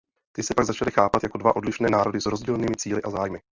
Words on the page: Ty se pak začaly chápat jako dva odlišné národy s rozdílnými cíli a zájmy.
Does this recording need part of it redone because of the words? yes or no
no